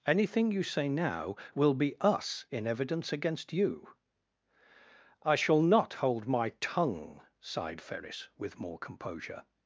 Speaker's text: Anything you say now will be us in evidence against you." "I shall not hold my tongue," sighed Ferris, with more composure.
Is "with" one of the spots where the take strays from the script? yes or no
no